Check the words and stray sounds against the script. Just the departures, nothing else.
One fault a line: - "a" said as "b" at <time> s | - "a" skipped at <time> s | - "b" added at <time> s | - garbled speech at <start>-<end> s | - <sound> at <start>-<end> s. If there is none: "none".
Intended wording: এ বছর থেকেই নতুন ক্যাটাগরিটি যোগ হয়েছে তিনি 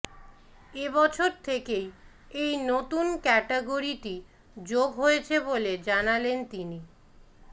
- "এই" added at 2.4 s
- "বলে জানালেন" added at 5.4 s